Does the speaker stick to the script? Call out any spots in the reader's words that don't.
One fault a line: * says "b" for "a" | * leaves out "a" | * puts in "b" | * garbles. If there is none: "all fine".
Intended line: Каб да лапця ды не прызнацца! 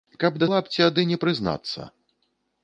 all fine